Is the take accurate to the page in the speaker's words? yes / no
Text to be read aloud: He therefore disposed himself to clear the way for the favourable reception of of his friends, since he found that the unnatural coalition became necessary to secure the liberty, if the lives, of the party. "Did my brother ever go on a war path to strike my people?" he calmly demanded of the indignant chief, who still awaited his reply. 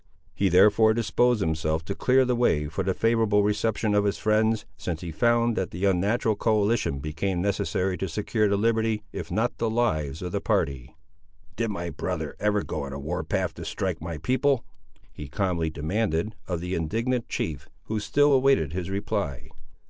no